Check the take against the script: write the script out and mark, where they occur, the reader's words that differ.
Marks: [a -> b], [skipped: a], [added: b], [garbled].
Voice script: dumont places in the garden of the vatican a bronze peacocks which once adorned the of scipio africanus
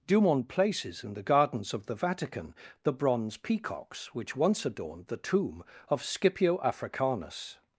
dumont places in the [garden -> gardens] of the vatican [a -> the] bronze peacocks which once adorned the [added: tomb] of scipio africanus